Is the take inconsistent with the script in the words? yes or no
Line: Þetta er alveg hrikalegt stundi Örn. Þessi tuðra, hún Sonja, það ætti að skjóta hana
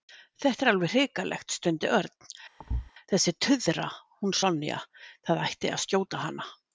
no